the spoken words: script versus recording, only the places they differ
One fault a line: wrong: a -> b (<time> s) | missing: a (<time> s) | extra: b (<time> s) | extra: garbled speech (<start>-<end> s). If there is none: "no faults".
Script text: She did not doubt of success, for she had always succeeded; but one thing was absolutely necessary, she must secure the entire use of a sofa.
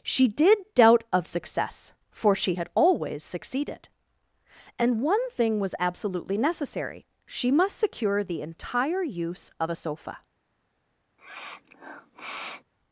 missing: not (0.6 s)
wrong: but -> and (4.8 s)